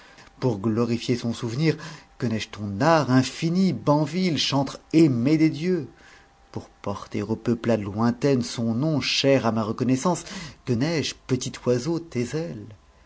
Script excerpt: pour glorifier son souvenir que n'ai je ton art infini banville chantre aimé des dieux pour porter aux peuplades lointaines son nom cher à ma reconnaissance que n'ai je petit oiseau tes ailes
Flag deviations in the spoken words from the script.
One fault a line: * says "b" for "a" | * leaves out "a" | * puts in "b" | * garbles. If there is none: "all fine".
all fine